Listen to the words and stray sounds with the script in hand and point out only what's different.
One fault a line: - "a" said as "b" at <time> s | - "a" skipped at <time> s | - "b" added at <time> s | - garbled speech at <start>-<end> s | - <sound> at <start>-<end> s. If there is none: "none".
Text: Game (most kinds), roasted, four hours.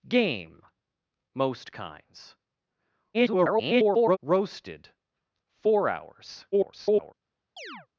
- garbled speech at 3.1-4.2 s
- garbled speech at 6.5-7.1 s
- chirp at 7.6-7.9 s